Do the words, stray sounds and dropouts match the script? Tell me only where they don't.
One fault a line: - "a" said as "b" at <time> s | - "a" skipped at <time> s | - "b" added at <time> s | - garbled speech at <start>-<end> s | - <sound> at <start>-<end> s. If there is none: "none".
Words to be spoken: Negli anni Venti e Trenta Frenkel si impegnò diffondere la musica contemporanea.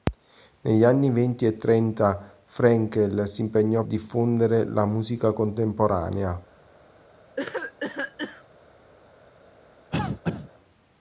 - cough at 7.4-8.4 s
- cough at 9.9-10.5 s